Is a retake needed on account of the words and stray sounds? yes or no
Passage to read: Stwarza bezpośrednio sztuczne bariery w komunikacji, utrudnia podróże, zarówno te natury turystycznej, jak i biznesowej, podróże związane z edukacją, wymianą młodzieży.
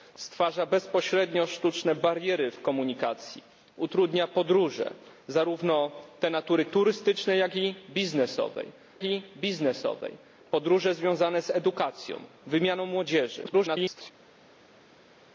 yes